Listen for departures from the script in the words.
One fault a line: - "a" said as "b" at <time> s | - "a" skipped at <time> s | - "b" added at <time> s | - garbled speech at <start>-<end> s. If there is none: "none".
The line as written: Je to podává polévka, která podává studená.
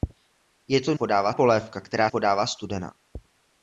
none